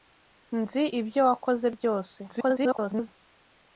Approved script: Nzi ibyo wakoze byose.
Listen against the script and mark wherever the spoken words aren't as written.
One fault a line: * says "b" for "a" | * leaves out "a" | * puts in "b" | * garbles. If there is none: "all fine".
* garbles